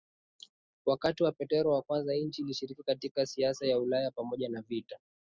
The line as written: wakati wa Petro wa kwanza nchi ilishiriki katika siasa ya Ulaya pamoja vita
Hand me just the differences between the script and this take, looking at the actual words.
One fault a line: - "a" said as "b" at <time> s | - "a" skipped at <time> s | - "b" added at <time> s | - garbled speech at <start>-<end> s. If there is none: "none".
- "na" added at 4.5 s